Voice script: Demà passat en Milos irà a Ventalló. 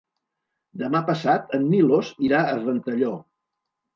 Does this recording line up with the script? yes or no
yes